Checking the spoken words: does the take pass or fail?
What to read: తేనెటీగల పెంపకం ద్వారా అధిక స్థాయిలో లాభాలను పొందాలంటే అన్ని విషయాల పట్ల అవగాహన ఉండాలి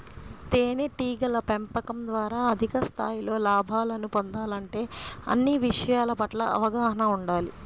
pass